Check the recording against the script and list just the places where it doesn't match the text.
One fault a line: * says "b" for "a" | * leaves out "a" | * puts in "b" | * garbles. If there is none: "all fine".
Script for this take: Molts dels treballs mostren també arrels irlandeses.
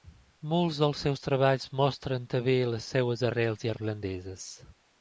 * puts in "seus"
* puts in "les seves"